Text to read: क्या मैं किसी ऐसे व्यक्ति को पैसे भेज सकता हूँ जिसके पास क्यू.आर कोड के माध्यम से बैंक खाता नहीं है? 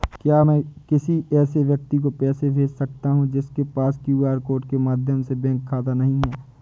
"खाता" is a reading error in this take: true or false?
false